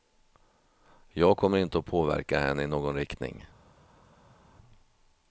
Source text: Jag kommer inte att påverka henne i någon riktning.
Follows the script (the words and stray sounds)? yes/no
yes